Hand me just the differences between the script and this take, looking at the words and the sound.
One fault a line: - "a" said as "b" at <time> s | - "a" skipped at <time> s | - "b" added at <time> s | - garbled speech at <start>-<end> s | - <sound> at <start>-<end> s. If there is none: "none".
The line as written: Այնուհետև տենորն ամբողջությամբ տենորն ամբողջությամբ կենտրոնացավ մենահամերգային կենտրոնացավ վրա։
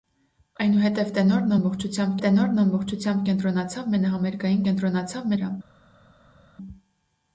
none